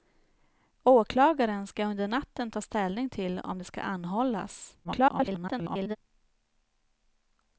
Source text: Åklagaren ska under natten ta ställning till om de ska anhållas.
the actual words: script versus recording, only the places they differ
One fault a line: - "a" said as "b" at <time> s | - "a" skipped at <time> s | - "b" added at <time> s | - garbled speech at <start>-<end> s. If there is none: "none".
- garbled speech at 4.8-6.0 s